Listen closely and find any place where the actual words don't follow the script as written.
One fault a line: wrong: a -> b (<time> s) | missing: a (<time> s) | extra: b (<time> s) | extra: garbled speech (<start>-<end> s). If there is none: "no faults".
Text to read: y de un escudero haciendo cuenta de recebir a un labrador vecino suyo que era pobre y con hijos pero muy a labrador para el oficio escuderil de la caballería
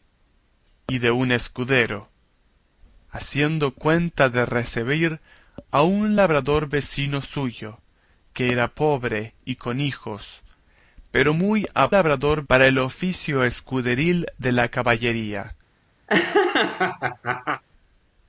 no faults